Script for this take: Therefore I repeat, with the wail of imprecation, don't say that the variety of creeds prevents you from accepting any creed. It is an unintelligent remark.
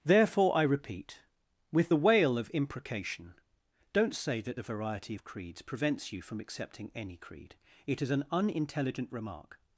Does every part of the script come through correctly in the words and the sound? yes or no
yes